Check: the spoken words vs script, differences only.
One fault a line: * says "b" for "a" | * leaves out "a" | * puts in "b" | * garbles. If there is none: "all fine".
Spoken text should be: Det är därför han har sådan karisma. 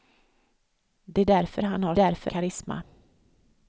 * says "därför" for "sådan"